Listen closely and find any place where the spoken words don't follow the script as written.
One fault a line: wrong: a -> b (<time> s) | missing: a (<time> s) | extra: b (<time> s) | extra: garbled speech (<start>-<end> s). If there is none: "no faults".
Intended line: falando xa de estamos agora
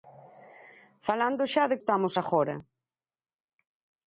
no faults